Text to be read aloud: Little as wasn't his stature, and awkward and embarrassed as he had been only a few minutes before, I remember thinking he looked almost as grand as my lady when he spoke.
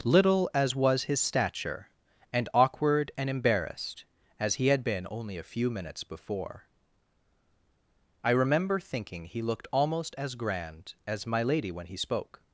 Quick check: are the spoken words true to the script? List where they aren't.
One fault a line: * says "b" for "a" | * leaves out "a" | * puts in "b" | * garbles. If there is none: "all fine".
* says "was" for "wasn't"